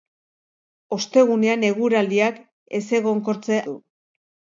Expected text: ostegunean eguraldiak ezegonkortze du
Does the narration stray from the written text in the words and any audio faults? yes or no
no